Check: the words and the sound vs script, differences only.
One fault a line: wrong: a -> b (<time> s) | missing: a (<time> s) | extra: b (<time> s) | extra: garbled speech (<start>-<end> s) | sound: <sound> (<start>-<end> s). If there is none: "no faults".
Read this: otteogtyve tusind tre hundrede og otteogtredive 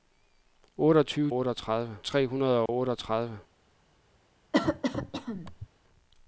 wrong: tusind -> otteogtredive (1.3 s)
sound: dropout (2.7-2.7 s)
sound: cough (4.5-5.7 s)